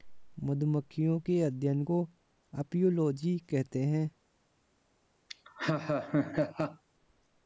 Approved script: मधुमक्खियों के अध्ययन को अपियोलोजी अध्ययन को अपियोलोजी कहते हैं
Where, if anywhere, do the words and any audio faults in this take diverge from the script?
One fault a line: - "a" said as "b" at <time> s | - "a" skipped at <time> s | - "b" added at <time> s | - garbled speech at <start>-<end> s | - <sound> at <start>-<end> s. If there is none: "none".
- "अध्ययन को अपियोलोजी" skipped at 3.4 s
- laugh at 5.3-6.8 s